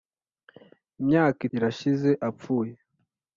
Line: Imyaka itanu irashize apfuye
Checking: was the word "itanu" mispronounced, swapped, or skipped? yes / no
yes